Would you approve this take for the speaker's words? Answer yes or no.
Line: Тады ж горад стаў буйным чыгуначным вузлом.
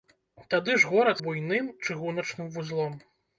no